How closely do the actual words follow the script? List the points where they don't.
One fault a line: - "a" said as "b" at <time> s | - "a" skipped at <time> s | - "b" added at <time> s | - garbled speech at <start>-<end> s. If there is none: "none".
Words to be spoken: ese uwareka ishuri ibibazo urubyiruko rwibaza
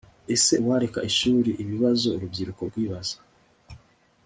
none